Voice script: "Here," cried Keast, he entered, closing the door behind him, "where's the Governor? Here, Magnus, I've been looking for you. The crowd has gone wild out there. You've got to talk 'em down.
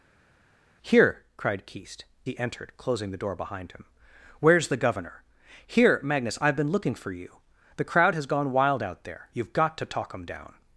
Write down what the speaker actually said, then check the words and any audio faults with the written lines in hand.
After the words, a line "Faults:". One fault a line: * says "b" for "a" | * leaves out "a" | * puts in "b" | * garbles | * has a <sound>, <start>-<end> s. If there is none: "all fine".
"Here," cried Keast, he entered, closing the door behind him, "where's the Governor? Here, Magnus, I've been looking for you. The crowd has gone wild out there. You've got to talk 'em down.
Faults:
all fine